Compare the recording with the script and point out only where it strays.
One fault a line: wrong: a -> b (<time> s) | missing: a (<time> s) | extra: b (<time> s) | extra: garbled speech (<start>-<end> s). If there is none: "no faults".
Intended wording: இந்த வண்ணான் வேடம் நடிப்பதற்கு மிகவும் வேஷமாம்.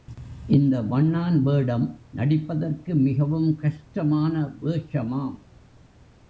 extra: கஷ்டமான (3.5 s)